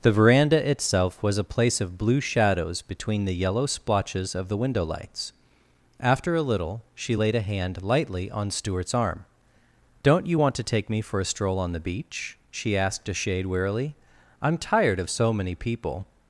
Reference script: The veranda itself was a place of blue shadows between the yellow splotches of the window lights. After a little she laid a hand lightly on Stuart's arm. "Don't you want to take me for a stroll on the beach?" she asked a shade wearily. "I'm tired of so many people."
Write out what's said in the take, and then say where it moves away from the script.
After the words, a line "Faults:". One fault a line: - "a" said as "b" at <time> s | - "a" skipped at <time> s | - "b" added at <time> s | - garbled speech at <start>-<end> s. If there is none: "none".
The veranda itself was a place of blue shadows between the yellow splotches of the window lights. After a little she laid a hand lightly on Stuart's arm. "Don't you want to take me for a stroll on the beach?" she asked a shade wearily. "I'm tired of so many people."
Faults:
none